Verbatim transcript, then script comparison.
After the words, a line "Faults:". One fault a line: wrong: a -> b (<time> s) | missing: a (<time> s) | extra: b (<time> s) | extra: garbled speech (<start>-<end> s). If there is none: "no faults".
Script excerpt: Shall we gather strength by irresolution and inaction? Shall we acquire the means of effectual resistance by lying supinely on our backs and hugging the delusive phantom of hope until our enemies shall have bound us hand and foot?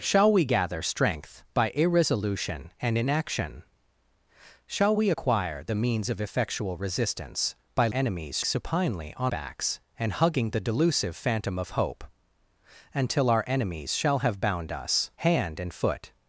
Shall we gather strength by irresolution and inaction? Shall we acquire the means of effectual resistance by enemies supinely on backs and hugging the delusive phantom of hope until our enemies shall have bound us hand and foot?
Faults:
wrong: lying -> enemies (7.9 s)
missing: our (9.3 s)